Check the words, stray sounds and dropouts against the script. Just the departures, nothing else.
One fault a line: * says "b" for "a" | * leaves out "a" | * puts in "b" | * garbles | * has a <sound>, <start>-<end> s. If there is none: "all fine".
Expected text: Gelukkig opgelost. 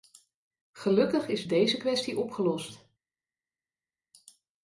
* puts in "is deze kwestie"